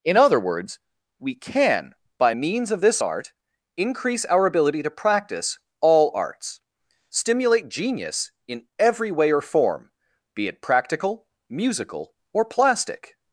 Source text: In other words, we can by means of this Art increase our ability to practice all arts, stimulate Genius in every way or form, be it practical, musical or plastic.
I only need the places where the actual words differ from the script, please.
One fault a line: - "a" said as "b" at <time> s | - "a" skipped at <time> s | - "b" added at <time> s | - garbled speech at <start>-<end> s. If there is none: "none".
none